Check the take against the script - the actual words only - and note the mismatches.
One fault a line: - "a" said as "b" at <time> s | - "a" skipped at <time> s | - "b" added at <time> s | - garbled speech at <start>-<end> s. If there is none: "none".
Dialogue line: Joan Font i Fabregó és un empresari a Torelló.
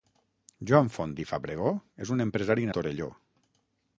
none